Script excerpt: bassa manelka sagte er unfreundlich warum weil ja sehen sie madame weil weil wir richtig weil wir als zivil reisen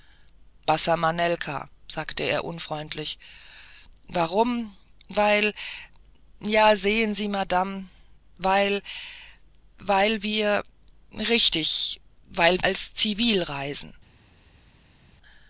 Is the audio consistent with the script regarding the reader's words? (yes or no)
no